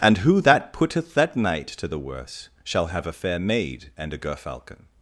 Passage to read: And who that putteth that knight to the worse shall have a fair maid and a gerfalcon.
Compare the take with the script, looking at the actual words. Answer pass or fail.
pass